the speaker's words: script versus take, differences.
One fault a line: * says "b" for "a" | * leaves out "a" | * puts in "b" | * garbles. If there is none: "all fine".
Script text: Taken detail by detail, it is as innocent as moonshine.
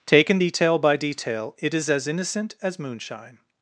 all fine